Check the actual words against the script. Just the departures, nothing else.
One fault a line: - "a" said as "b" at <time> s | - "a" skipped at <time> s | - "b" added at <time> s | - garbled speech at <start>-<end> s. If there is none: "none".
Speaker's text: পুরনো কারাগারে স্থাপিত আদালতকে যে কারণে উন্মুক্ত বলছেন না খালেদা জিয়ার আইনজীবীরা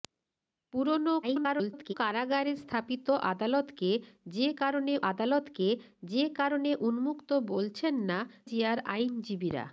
- garbled speech at 1.2-1.9 s
- "আদালতকে যে কারণে" added at 5.1 s
- "খালেদা" skipped at 8.2 s